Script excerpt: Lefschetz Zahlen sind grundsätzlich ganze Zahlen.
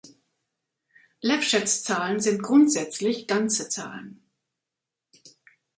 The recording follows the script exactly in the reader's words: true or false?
true